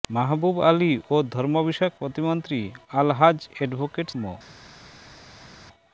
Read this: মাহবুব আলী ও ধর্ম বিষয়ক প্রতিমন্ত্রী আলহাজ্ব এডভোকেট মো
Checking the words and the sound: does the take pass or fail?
pass